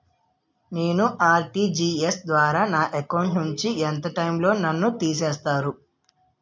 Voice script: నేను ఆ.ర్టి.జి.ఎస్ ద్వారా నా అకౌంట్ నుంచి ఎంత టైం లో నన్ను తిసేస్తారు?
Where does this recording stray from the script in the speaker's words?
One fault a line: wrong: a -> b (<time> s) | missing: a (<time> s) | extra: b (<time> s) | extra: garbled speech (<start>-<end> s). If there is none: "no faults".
no faults